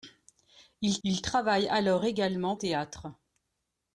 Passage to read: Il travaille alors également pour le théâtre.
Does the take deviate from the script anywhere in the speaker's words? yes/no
yes